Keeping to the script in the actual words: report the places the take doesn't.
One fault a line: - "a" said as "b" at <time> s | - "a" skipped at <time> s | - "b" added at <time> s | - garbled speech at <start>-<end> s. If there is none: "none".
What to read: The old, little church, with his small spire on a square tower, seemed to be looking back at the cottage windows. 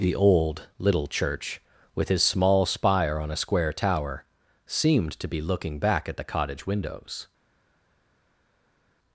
none